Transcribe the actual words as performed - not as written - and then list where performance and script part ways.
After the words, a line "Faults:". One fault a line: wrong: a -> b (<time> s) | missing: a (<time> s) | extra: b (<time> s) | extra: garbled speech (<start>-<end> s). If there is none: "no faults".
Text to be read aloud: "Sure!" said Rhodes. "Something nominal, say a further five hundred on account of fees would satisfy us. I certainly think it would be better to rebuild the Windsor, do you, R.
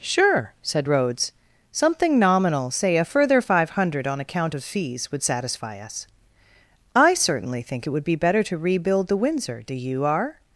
"Sure!" said Rhodes. "Something nominal, say a further five hundred on account of fees would satisfy us. I certainly think it would be better to rebuild the Windsor, do you, R.
Faults:
no faults